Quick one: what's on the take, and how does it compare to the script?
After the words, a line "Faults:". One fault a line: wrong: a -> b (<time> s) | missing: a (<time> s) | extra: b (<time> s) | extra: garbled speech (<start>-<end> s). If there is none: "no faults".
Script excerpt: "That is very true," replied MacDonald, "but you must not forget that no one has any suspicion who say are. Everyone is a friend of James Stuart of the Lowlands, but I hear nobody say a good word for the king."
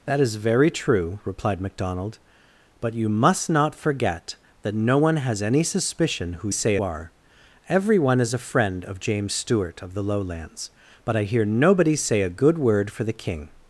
"That is very true," replied MacDonald, "but you must not forget that no one has any suspicion who say are. Everyone is a friend of James Stuart of the Lowlands, but I hear nobody say a good word for the king."
Faults:
no faults